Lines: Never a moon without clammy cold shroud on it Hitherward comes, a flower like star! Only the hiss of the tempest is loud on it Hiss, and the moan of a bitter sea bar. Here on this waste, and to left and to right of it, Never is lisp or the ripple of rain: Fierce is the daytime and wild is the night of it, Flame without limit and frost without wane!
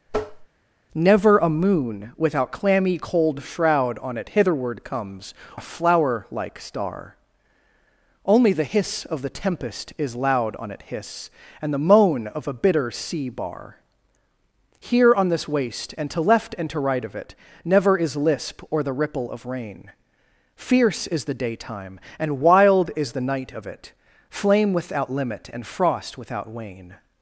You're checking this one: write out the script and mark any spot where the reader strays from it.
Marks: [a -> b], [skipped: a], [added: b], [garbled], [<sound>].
[tap] Never a moon without clammy cold shroud on it Hitherward comes, a flower like star! Only the hiss of the tempest is loud on it Hiss, and the moan of a bitter sea bar. Here on this waste, and to left and to right of it, Never is lisp or the ripple of rain: Fierce is the daytime and wild is the night of it, Flame without limit and frost without wane!